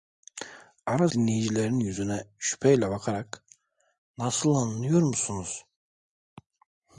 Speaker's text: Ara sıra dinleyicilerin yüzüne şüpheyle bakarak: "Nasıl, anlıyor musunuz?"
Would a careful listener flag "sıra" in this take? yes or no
yes